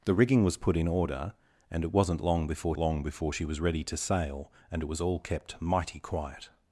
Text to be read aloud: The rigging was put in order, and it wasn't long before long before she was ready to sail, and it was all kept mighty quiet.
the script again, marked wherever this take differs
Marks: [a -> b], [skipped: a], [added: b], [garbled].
The rigging was put in order, and it wasn't long before long before she was ready to sail, and it was all kept mighty quiet.